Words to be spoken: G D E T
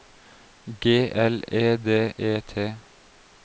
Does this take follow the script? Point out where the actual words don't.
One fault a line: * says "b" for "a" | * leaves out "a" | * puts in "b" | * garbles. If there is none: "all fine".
* puts in "L E"